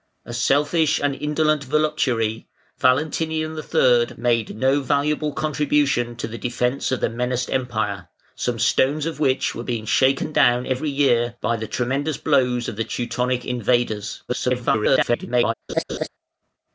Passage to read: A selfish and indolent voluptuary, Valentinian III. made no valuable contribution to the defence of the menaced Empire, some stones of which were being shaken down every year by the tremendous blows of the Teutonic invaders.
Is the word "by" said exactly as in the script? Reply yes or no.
yes